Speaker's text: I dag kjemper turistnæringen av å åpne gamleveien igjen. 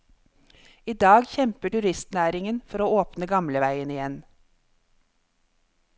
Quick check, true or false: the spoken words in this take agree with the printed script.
false